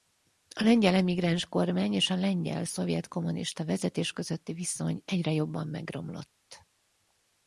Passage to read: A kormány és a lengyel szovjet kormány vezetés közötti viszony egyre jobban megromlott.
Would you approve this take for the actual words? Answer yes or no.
no